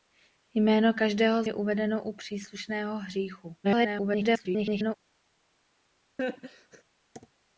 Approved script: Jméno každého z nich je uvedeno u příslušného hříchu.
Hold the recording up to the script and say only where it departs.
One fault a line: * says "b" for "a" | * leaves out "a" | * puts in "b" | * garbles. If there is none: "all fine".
* leaves out "nich"
* garbles